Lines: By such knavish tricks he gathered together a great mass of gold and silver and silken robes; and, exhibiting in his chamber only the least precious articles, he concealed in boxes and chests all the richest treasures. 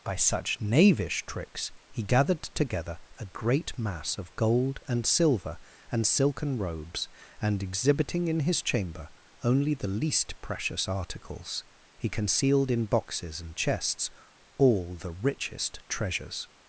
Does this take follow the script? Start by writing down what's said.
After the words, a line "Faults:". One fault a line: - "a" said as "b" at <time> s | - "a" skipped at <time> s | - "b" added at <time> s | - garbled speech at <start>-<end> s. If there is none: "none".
By such knavish tricks he gathered together a great mass of gold and silver and silken robes; and, exhibiting in his chamber only the least precious articles, he concealed in boxes and chests all the richest treasures.
Faults:
none